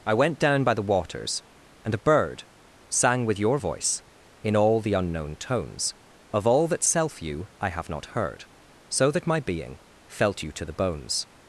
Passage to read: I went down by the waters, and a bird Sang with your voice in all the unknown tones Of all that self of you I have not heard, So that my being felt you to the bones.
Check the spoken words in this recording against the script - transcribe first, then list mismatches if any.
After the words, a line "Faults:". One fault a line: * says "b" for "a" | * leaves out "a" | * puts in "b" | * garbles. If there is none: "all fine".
I went down by the waters, and a bird Sang with your voice in all the unknown tones Of all that self you I have not heard, So that my being felt you to the bones.
Faults:
* leaves out "of"